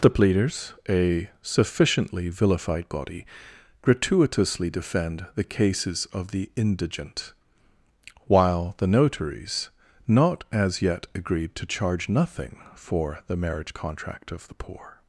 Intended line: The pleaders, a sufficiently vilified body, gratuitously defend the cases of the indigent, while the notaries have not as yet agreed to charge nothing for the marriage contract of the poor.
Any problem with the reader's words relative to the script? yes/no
yes